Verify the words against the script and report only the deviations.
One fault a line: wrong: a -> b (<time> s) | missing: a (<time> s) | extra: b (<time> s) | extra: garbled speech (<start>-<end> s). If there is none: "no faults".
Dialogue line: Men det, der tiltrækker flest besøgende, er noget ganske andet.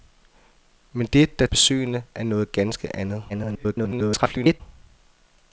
missing: tiltrækker flest (1.5 s)
extra: garbled speech (3.3-4.6 s)